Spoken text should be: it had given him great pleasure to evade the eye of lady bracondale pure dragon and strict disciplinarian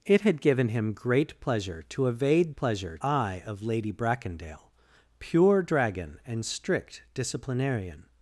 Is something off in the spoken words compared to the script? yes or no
yes